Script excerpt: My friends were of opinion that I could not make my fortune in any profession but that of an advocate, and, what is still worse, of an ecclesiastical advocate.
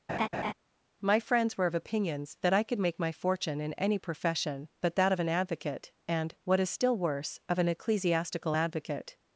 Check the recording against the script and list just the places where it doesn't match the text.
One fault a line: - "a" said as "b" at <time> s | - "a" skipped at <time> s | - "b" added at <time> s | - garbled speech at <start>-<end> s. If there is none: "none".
- "opinion" said as "opinions" at 1.8 s
- "not" skipped at 2.8 s